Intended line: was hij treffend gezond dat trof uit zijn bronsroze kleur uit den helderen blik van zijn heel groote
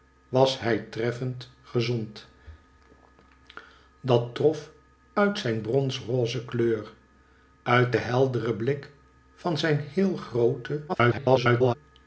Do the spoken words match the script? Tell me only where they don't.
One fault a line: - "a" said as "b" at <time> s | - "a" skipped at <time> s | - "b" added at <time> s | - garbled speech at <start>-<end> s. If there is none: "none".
- garbled speech at 10.9-11.7 s